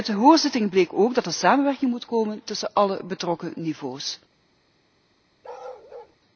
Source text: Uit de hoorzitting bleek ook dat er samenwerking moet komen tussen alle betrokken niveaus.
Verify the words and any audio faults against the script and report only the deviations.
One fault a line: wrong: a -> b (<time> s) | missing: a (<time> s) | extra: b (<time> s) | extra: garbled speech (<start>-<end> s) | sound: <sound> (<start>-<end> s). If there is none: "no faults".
sound: bark (5.4-6.2 s)